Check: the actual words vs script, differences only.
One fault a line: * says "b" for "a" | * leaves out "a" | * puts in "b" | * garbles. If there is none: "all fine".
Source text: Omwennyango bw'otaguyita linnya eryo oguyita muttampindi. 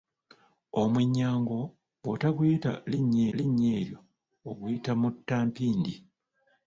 * puts in "linnya"